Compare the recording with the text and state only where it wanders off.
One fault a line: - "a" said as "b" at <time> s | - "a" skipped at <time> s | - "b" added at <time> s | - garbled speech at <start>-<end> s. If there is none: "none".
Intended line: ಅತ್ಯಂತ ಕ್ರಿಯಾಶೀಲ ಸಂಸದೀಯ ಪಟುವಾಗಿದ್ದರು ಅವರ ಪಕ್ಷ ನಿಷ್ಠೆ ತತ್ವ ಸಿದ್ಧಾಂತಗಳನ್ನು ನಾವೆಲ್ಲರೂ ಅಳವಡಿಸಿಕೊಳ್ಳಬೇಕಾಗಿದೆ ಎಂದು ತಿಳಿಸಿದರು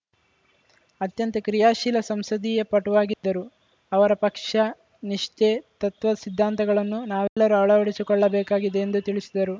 none